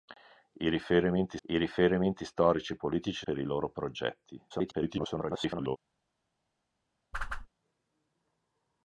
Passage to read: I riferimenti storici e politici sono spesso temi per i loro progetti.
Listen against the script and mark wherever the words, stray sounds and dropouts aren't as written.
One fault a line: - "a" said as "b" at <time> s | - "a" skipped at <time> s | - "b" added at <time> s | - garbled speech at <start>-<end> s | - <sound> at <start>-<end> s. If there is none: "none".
- "I riferimenti" added at 1.4 s
- "sono spesso temi" skipped at 3.3 s
- garbled speech at 4.5-5.8 s
- whoosh at 7.1-7.5 s